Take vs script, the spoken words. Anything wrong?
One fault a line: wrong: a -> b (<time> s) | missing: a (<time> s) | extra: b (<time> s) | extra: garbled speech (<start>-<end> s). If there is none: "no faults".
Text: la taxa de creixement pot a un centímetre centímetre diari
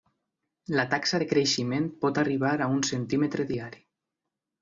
extra: arribar (2.2 s)
missing: centímetre (3.5 s)